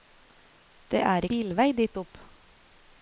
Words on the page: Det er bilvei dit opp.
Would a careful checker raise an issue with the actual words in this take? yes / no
no